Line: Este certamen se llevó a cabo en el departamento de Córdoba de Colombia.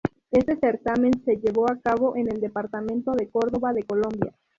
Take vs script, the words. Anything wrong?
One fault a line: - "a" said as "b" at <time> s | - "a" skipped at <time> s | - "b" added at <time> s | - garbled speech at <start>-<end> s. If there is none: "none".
none